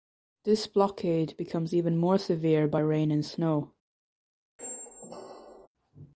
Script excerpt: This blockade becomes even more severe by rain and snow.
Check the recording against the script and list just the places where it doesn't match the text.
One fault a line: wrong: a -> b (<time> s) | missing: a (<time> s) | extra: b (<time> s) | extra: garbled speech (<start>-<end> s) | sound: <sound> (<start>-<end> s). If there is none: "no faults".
sound: squeak (4.6-5.7 s)